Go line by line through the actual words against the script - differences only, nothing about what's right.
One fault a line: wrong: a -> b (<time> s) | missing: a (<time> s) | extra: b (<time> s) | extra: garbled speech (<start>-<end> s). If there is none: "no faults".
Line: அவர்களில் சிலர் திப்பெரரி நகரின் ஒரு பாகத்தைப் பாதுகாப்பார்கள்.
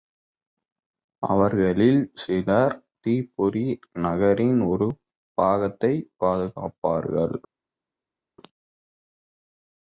no faults